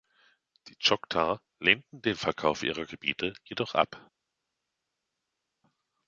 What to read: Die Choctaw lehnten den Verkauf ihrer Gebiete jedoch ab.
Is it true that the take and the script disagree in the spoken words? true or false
false